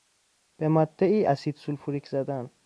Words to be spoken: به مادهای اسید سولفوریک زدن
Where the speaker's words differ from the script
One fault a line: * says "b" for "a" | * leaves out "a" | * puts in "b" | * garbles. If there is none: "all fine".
all fine